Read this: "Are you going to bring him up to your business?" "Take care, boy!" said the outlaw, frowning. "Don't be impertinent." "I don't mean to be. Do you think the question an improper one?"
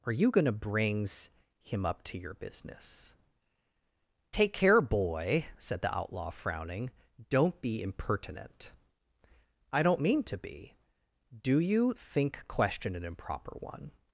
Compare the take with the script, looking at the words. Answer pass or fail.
fail